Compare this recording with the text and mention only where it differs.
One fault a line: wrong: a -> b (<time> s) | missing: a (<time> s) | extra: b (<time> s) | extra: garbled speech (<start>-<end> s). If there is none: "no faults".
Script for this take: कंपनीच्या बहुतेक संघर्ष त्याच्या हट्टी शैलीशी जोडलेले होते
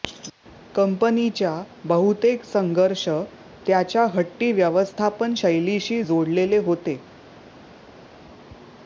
extra: व्यवस्थापन (4.5 s)